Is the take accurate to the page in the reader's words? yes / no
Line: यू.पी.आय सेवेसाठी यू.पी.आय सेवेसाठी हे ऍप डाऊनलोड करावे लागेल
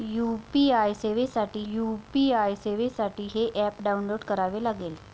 yes